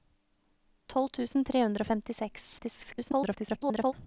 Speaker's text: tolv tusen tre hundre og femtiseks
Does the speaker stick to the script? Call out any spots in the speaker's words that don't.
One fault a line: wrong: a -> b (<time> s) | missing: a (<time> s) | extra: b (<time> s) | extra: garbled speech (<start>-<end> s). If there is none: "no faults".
extra: garbled speech (2.6-3.9 s)